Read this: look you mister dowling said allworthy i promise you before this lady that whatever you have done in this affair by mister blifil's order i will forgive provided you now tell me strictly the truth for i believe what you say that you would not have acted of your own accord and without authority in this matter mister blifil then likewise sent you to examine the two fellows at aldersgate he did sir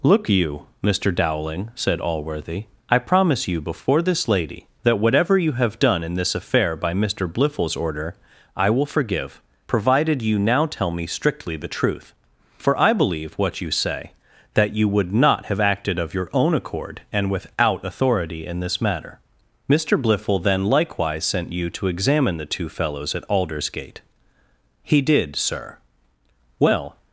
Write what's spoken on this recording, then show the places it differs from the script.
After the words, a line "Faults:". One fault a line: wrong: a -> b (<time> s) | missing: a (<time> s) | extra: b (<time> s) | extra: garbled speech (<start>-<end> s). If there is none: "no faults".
look you mister dowling said allworthy i promise you before this lady that whatever you have done in this affair by mister blifil's order i will forgive provided you now tell me strictly the truth for i believe what you say that you would not have acted of your own accord and without authority in this matter mister blifil then likewise sent you to examine the two fellows at aldersgate he did sir well
Faults:
extra: well (26.6 s)